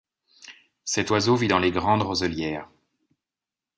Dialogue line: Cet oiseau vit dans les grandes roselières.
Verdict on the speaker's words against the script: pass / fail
pass